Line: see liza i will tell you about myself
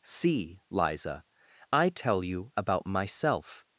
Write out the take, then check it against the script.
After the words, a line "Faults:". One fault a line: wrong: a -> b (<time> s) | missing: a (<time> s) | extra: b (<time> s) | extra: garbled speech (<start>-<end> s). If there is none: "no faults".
see liza i tell you about myself
Faults:
missing: will (1.9 s)